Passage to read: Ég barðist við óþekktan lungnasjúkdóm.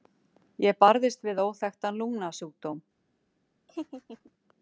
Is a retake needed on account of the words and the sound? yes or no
yes